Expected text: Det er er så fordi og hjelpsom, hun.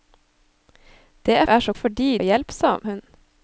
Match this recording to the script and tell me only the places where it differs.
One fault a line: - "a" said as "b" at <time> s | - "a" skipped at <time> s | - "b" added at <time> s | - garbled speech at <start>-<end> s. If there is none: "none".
none